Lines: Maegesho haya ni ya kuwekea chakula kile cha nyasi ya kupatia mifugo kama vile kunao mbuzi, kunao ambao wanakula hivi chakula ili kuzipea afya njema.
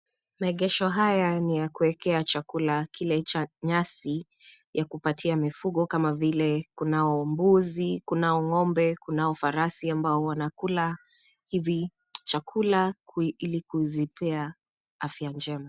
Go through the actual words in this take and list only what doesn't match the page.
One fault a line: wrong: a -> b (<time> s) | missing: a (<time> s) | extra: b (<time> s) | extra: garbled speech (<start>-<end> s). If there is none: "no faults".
extra: ngo'mbe kunao farasi (8.4 s)